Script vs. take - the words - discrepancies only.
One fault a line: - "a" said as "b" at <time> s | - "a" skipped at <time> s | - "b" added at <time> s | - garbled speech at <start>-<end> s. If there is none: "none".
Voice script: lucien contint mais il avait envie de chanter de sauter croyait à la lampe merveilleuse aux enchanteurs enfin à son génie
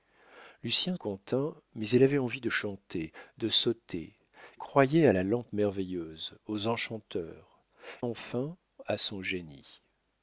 none